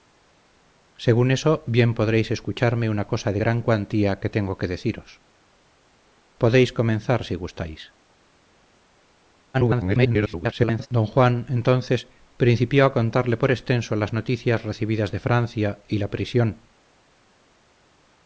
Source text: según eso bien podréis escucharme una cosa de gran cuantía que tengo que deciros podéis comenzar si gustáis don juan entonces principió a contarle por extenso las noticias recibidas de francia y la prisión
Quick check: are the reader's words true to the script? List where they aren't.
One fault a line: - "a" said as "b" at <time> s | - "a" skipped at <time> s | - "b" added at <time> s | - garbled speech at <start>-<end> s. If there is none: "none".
- garbled speech at 9.5-10.9 s